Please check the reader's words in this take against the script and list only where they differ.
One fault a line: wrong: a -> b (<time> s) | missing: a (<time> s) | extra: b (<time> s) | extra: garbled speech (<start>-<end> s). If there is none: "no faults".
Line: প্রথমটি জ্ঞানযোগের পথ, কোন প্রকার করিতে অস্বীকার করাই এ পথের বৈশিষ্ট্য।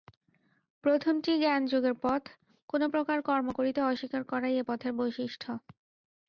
extra: কর্ম (3.2 s)